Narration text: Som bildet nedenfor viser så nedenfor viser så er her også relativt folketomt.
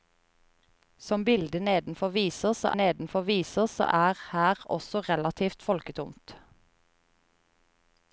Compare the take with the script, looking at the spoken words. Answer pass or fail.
pass